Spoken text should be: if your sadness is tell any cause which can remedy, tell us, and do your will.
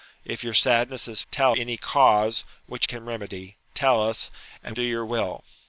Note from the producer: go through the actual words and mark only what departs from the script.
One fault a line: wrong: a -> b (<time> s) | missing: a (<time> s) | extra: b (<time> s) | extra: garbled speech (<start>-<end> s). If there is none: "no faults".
no faults